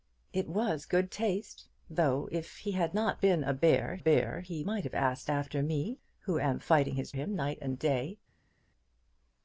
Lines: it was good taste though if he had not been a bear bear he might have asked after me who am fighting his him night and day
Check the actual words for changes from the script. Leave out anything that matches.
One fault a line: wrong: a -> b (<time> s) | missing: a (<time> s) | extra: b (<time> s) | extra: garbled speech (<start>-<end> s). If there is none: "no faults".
no faults